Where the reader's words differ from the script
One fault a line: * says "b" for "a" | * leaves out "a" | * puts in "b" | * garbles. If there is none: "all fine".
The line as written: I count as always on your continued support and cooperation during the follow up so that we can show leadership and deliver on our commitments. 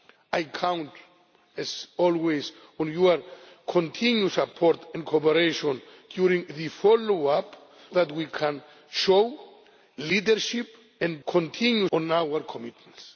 * leaves out "so"
* says "continued" for "deliver"